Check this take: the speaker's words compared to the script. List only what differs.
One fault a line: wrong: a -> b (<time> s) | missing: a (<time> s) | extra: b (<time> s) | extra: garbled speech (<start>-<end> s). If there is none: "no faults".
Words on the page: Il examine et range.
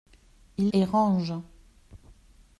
missing: examine (0.7 s)